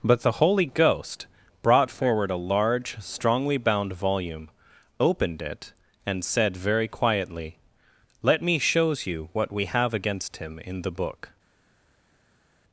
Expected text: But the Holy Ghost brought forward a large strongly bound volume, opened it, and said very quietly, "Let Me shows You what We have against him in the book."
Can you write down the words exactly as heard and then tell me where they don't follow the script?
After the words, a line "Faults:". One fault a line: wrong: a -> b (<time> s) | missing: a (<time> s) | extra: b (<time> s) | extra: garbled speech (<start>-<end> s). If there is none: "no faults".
But the Holy Ghost brought forward a large strongly bound volume, opened it, and said very quietly, "Let Me shows You what We have against him in the book."
Faults:
no faults